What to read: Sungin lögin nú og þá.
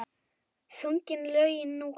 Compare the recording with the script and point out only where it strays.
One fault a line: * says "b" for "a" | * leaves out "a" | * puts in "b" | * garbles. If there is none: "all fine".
all fine